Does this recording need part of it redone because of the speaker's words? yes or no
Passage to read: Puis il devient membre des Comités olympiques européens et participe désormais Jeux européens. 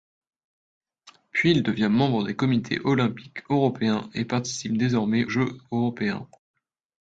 no